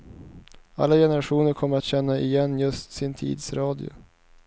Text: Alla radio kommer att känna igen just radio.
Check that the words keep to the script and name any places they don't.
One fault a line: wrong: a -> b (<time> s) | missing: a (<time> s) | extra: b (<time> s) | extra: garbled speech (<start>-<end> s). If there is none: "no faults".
wrong: radio -> generationer (0.9 s)
extra: sin tids (2.9 s)